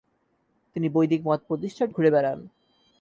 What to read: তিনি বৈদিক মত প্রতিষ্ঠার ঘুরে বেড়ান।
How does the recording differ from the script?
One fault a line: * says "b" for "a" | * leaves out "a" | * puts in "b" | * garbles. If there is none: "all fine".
all fine